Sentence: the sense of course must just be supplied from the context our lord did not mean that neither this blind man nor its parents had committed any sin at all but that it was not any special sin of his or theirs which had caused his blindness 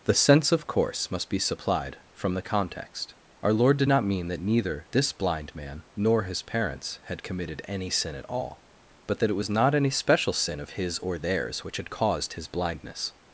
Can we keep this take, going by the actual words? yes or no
no